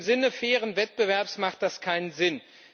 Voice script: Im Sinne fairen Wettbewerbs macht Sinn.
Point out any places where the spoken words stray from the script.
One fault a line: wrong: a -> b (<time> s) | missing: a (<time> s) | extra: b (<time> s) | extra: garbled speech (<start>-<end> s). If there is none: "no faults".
extra: das keinen (1.6 s)